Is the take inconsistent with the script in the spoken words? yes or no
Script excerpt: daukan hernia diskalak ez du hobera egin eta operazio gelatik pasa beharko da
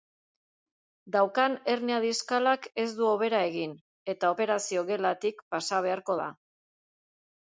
no